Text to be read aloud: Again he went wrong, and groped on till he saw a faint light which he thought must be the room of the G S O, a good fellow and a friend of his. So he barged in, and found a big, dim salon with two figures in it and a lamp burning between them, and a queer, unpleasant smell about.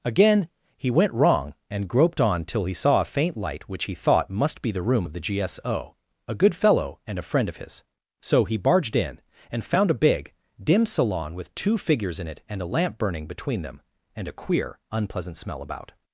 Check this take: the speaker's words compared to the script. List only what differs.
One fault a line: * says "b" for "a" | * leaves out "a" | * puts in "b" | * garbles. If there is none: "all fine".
all fine